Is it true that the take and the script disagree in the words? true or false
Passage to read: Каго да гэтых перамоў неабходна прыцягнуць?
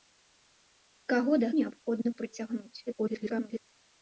true